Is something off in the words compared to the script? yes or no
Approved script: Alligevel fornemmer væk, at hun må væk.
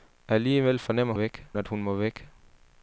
no